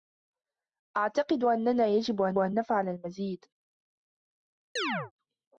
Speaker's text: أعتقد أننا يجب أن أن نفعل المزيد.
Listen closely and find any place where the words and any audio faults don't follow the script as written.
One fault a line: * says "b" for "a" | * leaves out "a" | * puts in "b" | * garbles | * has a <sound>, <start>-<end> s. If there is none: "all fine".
* has a chirp, 4.8-5.1 s